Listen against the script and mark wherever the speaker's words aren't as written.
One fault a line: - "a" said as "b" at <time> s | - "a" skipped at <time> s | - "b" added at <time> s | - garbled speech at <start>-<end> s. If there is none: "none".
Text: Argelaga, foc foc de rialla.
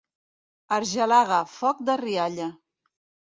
- "foc" skipped at 1.9 s